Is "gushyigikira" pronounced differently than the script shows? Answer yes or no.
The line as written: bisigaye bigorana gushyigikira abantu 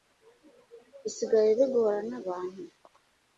yes